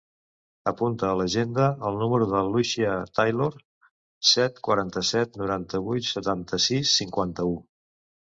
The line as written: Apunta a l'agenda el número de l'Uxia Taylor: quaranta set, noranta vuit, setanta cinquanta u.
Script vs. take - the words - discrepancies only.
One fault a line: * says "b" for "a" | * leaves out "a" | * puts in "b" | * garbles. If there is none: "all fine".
* puts in "set"
* puts in "sis"